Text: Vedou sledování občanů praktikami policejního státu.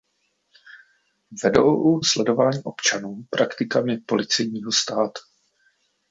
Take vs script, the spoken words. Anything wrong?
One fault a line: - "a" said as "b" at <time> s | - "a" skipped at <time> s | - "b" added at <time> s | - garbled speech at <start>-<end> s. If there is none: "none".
none